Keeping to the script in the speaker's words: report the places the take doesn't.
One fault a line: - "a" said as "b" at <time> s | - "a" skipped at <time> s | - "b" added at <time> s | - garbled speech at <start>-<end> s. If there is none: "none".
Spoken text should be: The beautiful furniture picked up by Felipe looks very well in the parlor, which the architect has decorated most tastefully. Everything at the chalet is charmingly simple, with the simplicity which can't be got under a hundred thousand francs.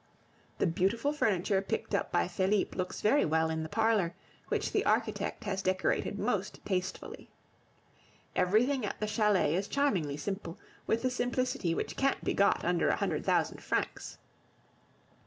none